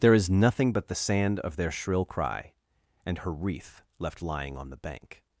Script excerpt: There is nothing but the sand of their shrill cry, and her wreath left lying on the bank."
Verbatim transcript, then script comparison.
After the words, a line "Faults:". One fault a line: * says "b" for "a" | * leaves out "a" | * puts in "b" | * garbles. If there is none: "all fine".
There is nothing but the sand of their shrill cry, and her wreath left lying on the bank."
Faults:
all fine